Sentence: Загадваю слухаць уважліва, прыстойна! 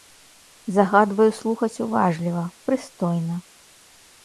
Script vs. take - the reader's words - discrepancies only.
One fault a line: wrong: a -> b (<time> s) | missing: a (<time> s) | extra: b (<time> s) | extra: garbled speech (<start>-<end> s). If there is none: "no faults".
no faults